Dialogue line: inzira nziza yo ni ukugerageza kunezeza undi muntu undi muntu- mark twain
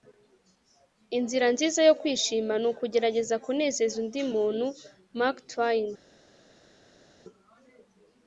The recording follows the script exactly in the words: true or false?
false